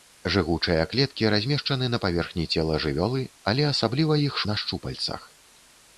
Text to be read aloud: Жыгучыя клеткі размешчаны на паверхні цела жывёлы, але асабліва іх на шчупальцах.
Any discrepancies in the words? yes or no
no